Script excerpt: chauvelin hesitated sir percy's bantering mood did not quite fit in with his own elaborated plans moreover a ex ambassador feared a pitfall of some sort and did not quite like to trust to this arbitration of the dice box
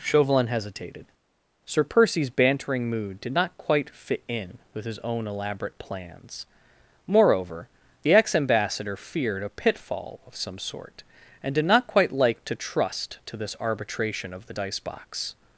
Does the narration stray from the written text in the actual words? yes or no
yes